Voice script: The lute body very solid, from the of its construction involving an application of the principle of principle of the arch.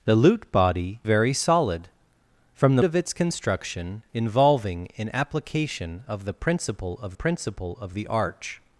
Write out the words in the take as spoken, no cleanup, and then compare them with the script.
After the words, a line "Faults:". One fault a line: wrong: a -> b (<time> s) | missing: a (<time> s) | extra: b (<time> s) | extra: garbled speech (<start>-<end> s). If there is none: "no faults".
The lute body very solid, from the of its construction involving an application of the principle of principle of the arch.
Faults:
no faults